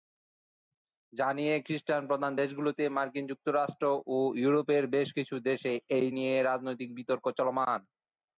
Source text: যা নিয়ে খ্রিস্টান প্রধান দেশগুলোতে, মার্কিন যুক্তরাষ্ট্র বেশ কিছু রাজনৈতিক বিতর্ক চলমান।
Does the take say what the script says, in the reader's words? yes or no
no